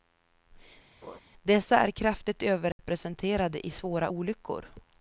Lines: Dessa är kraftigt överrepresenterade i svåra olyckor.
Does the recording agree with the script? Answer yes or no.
yes